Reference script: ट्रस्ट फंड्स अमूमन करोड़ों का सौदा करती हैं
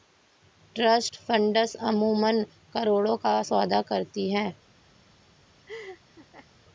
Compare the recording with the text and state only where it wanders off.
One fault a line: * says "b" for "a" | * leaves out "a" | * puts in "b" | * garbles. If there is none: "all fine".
all fine